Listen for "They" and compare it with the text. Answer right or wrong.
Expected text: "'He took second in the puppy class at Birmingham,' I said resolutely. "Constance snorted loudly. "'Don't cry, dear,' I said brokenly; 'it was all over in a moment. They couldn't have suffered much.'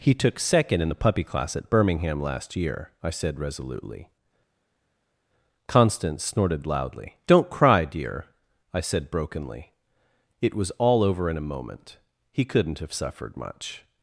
wrong